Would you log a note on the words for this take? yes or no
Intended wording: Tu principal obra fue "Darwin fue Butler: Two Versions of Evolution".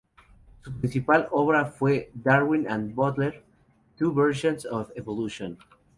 yes